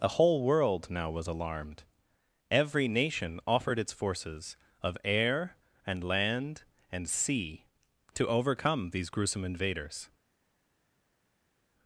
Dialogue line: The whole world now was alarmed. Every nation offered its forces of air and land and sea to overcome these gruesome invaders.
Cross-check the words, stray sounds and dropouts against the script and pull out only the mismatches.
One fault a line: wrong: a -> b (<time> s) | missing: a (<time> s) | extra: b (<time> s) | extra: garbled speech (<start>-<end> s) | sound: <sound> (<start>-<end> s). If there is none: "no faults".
wrong: The -> A (0.0 s)